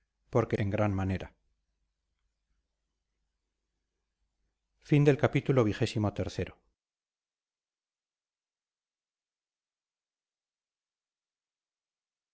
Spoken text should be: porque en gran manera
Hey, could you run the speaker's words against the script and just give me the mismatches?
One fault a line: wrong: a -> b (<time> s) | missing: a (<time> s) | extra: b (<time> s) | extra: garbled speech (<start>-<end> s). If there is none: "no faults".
no faults